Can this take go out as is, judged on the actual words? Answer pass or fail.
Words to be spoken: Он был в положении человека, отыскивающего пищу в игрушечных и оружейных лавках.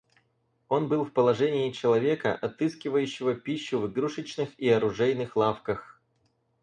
pass